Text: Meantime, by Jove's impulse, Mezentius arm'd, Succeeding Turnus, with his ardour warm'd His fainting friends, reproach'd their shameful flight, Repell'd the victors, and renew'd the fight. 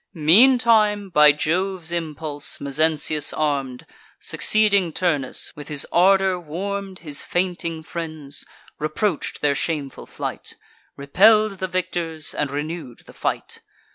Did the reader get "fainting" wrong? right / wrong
right